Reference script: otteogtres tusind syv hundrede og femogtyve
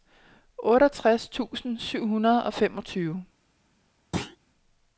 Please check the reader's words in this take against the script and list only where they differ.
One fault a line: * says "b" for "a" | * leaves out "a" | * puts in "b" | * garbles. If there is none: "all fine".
all fine